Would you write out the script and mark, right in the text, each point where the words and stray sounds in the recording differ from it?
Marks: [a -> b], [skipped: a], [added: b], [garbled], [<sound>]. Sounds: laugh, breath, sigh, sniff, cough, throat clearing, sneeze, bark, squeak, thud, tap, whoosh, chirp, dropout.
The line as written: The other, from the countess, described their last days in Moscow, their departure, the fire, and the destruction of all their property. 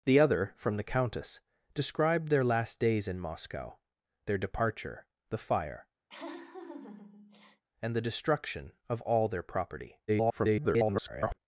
The other, from the countess, described their last days in Moscow, their departure, the fire, [laugh] and the destruction of all their property. [garbled]